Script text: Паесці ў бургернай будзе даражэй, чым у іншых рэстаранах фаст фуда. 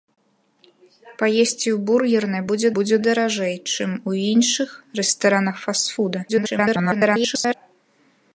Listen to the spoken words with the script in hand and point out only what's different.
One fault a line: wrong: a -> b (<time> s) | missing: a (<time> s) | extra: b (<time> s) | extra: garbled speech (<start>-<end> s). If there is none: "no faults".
extra: будзе (2.8 s)
extra: garbled speech (6.3-7.5 s)